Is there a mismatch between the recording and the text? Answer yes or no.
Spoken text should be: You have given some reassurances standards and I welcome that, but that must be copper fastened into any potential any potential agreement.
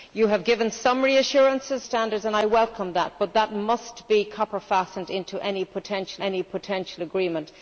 no